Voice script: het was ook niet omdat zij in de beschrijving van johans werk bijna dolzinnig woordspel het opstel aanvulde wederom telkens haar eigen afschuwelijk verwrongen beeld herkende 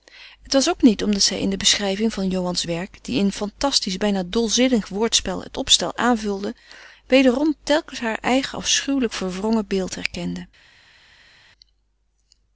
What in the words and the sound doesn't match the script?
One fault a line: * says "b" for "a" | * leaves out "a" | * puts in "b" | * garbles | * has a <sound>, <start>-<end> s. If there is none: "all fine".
* puts in "die in fantastisch"